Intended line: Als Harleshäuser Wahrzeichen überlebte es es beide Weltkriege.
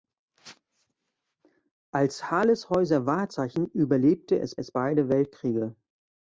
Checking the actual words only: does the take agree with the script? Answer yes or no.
yes